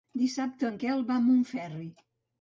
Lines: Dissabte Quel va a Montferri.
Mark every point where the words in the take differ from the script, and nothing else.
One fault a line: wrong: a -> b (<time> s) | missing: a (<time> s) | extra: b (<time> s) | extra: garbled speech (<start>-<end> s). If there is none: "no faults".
extra: en (0.7 s)